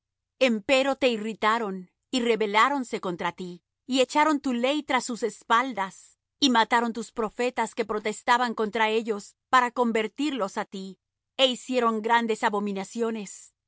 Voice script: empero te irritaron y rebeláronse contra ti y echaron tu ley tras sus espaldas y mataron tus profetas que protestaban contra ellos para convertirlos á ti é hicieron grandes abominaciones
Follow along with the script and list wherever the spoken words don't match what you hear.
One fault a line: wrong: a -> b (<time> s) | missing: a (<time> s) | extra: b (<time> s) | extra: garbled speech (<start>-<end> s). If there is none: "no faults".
no faults